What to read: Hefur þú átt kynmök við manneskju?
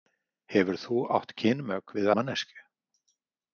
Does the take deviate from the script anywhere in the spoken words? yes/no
no